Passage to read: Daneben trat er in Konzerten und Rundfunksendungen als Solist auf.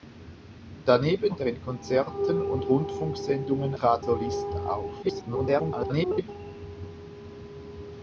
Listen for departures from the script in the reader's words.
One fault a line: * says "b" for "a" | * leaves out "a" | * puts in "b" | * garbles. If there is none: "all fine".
* leaves out "trat"
* says "trat" for "als"
* garbles